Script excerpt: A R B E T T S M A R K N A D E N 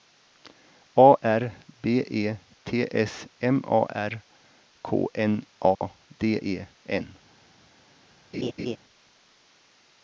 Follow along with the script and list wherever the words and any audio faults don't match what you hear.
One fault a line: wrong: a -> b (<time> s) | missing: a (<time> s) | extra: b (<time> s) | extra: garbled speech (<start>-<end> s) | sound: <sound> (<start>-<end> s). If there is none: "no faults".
missing: T (2.9 s)
sound: dropout (5.7-5.8 s)
sound: laugh (8.3-8.8 s)